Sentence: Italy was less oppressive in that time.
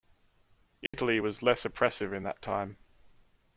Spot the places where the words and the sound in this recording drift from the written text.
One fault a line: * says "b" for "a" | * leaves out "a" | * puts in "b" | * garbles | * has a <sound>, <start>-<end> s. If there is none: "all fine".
* has a dropout, 0.9-0.9 s